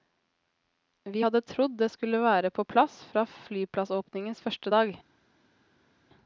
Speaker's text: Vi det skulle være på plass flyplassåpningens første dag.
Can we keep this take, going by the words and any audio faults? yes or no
no